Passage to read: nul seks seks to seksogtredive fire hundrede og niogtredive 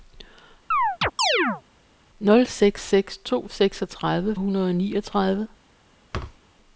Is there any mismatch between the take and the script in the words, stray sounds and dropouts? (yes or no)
yes